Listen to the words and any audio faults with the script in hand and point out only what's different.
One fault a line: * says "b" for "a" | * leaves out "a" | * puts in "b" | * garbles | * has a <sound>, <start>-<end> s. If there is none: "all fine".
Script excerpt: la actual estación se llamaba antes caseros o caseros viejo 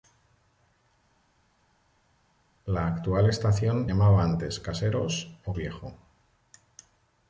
* leaves out "se"
* leaves out "caseros"